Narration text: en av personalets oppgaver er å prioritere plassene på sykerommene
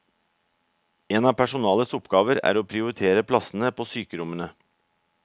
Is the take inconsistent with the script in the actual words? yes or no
no